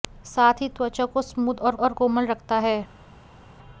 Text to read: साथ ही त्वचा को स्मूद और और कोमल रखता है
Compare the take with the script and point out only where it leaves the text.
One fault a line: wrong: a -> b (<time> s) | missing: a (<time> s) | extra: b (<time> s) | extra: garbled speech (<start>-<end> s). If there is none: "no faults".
no faults